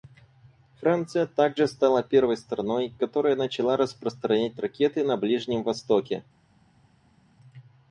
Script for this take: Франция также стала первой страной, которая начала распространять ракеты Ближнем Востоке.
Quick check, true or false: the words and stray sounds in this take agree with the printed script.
false